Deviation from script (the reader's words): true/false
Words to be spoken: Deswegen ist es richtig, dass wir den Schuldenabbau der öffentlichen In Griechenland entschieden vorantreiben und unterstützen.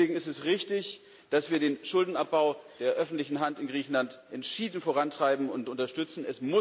true